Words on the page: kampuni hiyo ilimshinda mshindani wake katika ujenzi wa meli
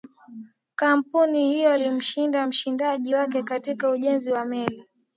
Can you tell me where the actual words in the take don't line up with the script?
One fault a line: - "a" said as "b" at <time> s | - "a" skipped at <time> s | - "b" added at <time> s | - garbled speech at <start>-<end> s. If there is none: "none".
none